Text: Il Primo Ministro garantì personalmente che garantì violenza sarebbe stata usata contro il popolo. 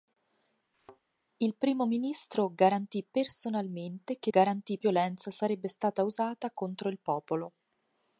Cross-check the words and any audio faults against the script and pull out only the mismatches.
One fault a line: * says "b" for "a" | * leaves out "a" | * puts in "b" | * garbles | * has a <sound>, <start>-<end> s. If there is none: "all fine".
* has a thud, 0.7-1.0 s